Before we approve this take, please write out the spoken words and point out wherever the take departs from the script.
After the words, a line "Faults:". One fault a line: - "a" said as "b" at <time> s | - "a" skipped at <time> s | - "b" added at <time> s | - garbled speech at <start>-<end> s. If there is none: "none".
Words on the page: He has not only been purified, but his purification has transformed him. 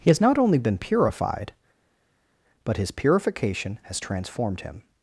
He has not only been purified, but his purification has transformed him.
Faults:
none